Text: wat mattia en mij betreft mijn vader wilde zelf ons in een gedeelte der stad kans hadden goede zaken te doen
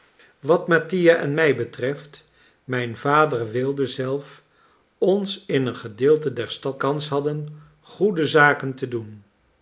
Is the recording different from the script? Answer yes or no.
no